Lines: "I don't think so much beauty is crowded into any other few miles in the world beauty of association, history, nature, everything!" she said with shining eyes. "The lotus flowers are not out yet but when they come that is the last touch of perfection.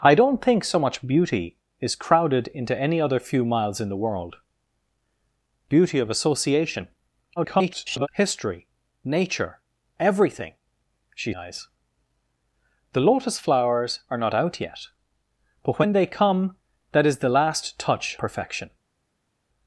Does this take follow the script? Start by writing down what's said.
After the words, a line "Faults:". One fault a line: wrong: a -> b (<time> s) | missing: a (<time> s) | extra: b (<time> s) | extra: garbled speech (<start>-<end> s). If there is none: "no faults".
"I don't think so much beauty is crowded into any other few miles in the world beauty of association, [garbled] history, nature, everything!" she eyes. "The lotus flowers are not out yet but when they come that is the last touch perfection.
Faults:
extra: garbled speech (7.4-8.1 s)
missing: said with shining (11.3 s)
missing: of (18.2 s)